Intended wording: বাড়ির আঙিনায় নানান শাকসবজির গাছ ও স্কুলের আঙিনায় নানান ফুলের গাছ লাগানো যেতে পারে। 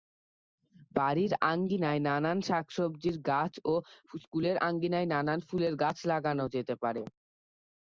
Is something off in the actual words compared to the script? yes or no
no